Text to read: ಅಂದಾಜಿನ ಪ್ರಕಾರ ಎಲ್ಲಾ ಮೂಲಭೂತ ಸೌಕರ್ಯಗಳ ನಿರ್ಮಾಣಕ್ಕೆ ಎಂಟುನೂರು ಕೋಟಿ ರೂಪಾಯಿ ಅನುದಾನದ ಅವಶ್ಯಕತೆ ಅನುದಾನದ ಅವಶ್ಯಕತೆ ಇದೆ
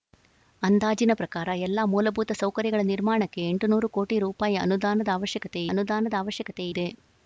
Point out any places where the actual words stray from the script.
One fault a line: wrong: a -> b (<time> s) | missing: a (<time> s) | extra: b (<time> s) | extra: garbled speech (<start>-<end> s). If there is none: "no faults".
no faults